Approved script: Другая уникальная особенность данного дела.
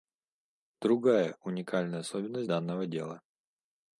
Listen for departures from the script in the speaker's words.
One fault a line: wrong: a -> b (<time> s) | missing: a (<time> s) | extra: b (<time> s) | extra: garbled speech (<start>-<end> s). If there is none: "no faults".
no faults